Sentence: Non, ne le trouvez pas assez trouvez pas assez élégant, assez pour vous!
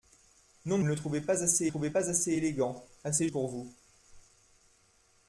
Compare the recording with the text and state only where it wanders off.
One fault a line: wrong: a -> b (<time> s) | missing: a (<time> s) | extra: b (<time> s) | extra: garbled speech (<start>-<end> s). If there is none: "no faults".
no faults